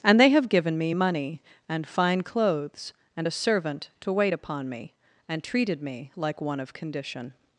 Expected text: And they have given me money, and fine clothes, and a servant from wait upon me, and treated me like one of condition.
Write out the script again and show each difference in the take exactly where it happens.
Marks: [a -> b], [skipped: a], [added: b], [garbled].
And they have given me money, and fine clothes, and a servant [from -> to] wait upon me, and treated me like one of condition.